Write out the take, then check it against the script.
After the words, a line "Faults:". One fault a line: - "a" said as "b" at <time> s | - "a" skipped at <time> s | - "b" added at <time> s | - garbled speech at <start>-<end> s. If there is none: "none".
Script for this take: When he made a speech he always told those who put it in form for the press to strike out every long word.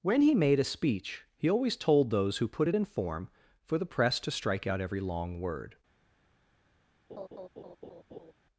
When he made a speech he always told those who put it in form for the press to strike out every long word.
Faults:
none